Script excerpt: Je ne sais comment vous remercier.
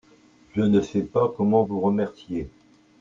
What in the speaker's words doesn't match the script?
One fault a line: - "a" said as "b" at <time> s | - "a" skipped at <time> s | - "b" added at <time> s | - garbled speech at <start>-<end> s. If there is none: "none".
- "pas" added at 1.0 s